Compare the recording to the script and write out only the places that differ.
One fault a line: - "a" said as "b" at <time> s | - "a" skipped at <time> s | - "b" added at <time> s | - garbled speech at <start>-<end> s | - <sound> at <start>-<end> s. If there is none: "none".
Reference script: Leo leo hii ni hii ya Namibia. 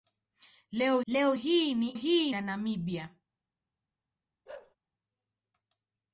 - bark at 4.5-4.8 s